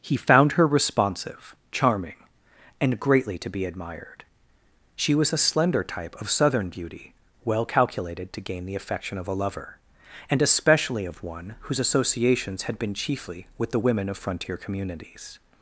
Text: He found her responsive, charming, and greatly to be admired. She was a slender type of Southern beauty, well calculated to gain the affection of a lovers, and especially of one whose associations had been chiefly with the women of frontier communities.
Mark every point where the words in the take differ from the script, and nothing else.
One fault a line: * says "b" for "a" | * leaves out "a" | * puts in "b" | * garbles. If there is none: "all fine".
* says "lover" for "lovers"